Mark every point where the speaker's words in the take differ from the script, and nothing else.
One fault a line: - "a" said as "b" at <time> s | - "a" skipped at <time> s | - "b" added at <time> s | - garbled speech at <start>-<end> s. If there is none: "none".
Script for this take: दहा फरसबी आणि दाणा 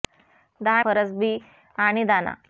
none